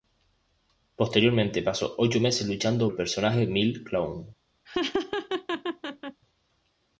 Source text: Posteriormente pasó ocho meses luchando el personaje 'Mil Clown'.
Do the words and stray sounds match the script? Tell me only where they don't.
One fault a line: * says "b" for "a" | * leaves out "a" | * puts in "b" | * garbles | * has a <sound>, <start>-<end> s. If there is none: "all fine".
* has a laugh, 4.7-6.2 s